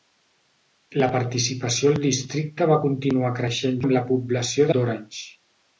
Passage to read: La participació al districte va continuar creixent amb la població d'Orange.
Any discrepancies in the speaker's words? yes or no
no